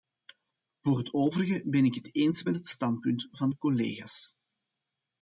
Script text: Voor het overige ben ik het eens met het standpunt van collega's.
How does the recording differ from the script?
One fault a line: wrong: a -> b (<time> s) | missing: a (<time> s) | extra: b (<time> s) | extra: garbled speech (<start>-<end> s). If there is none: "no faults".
extra: de (3.5 s)